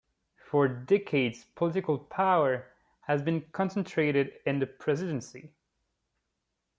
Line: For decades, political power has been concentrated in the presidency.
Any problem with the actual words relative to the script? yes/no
no